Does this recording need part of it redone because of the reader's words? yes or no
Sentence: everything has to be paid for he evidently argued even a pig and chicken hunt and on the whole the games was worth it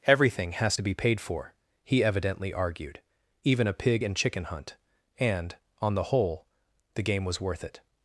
yes